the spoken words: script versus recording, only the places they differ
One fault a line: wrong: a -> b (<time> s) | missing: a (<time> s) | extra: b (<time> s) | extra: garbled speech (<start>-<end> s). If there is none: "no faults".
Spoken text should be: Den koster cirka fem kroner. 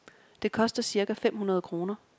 wrong: Den -> Det (0.4 s)
extra: hundrede (1.4 s)